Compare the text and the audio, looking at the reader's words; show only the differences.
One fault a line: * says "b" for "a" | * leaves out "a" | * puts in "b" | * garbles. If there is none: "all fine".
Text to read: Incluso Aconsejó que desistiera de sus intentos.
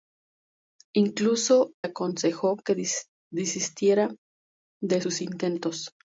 all fine